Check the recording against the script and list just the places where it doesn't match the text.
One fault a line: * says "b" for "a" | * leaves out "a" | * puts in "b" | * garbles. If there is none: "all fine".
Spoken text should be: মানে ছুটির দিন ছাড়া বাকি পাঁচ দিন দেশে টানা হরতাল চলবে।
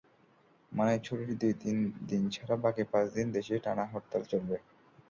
all fine